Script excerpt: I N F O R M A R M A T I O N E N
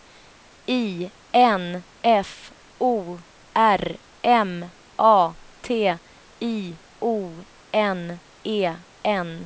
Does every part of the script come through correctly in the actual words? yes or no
no